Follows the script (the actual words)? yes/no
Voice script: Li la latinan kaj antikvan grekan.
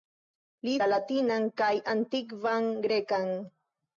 yes